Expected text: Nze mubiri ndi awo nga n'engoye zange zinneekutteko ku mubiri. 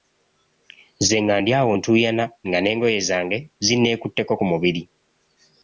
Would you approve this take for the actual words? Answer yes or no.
no